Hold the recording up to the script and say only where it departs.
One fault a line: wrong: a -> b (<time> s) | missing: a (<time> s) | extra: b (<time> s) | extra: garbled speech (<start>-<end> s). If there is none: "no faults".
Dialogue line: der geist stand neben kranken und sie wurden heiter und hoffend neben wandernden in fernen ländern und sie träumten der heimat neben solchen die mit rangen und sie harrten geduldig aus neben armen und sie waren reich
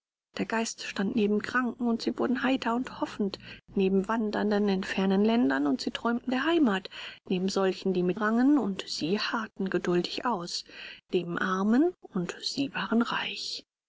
no faults